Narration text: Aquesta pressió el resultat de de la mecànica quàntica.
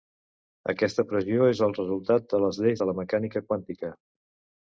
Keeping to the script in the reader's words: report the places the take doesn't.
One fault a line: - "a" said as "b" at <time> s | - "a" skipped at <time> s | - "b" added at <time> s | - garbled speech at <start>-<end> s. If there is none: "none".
- "és" added at 1.5 s
- "les lleis" added at 2.5 s